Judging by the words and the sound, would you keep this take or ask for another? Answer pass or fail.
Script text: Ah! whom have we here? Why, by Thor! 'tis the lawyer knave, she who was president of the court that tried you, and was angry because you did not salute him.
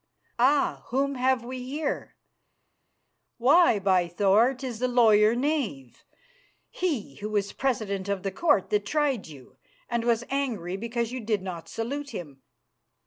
fail